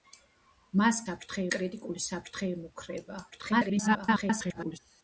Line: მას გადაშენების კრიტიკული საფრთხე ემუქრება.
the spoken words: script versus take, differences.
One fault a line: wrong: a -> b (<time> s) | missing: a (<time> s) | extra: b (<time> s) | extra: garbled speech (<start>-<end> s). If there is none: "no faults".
wrong: გადაშენების -> საფრთხე (1.0 s)
extra: garbled speech (3.3-4.8 s)